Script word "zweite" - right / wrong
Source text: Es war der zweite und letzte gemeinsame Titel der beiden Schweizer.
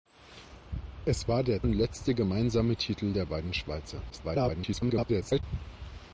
wrong